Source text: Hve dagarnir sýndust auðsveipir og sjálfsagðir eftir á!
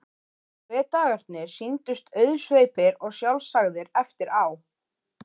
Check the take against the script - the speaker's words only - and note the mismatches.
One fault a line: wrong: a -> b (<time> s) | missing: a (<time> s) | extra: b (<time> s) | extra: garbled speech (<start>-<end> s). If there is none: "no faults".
no faults